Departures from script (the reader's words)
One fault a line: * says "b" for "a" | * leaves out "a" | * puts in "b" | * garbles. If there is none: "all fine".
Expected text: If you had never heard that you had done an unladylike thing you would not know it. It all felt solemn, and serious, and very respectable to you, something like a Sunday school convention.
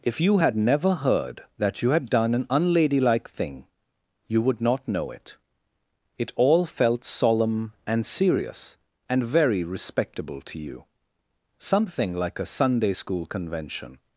all fine